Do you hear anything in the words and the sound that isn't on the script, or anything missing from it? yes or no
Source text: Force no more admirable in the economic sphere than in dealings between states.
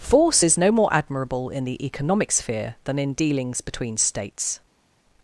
yes